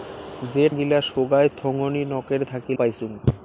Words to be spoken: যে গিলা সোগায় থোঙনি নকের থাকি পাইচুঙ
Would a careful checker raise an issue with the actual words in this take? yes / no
no